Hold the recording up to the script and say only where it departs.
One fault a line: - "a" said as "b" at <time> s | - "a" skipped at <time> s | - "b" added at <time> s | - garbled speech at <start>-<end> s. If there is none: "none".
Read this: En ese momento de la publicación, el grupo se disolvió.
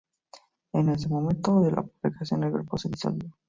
none